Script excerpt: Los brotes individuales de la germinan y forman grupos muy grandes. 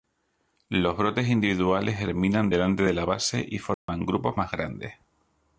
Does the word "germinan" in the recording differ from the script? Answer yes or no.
yes